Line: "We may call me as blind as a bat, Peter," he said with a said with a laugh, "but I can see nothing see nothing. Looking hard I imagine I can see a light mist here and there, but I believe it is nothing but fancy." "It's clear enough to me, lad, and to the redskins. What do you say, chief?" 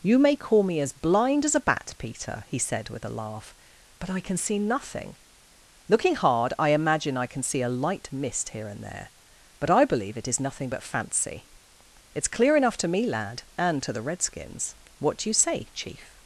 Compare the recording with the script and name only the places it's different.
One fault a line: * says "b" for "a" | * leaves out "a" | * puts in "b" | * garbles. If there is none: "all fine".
* says "You" for "We"
* leaves out "said with a"
* leaves out "see nothing"